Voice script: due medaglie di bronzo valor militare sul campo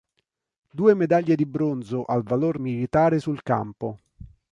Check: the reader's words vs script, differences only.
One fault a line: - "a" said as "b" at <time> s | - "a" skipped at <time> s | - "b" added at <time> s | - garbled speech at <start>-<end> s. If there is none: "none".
- "al" added at 2.0 s